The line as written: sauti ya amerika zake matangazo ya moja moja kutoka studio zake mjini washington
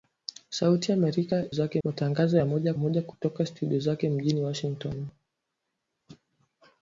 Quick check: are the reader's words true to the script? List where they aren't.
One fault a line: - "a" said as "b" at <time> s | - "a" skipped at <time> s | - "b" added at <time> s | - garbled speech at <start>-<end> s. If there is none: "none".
none